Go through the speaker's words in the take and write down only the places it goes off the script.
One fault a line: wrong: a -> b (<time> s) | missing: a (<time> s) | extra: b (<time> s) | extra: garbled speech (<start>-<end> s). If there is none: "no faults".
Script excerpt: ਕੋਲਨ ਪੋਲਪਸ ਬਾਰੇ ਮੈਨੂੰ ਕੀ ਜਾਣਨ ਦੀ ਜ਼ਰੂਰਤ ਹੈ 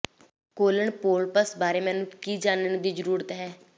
no faults